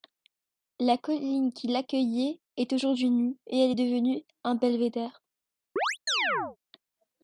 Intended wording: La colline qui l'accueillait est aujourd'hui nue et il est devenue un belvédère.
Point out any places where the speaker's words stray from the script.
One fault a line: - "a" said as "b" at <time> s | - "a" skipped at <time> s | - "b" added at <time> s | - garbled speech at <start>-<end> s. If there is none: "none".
- "il" said as "elle" at 3.6 s